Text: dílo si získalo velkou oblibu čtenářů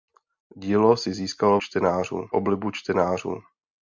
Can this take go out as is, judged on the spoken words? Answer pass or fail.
fail